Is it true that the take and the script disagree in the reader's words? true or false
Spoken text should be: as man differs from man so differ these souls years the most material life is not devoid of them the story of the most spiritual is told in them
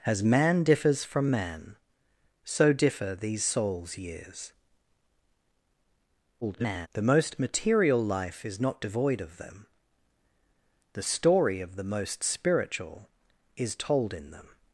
true